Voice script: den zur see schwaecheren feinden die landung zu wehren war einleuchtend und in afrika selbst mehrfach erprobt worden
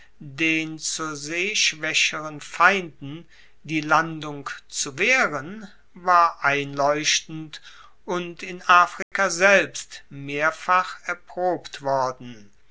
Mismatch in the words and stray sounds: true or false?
true